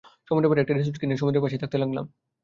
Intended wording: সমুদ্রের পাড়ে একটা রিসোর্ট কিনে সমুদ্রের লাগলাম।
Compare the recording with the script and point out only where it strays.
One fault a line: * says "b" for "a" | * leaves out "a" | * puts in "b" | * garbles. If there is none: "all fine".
* puts in "পাশেই থাকতে"